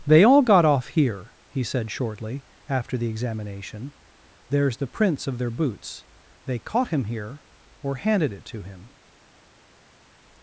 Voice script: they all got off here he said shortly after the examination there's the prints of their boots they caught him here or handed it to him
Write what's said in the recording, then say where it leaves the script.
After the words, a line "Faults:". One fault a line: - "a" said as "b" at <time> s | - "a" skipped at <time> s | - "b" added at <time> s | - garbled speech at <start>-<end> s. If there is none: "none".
they all got off here he said shortly after the examination there's the prints of their boots they caught him here or handed it to him
Faults:
none